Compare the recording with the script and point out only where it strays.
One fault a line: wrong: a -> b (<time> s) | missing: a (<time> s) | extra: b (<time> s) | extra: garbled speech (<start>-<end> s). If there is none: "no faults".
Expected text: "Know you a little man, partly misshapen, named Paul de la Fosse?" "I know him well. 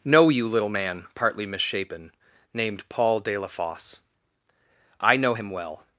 missing: a (0.5 s)